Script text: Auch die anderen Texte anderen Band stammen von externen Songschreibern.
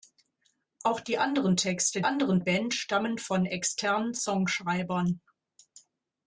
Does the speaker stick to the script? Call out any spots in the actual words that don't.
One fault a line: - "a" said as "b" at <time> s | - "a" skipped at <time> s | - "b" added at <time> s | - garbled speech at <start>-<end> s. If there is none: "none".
none